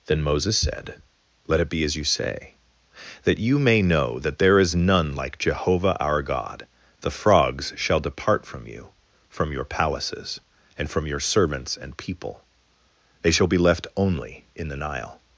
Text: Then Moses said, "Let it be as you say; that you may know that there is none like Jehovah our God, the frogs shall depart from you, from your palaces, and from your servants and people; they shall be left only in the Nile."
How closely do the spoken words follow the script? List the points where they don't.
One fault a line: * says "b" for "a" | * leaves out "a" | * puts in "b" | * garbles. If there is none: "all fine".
all fine